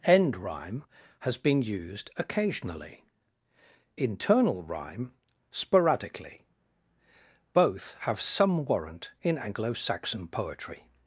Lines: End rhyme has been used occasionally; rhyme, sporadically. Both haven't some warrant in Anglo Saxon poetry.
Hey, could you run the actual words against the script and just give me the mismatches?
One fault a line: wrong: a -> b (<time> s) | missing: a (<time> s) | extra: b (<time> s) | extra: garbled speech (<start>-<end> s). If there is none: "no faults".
extra: internal (4.0 s)
wrong: haven't -> have (8.0 s)